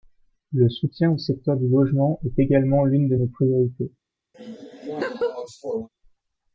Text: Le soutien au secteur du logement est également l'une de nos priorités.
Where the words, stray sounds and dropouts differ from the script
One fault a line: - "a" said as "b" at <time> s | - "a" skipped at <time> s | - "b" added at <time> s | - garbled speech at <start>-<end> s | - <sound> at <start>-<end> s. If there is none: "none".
- laugh at 4.3-5.9 s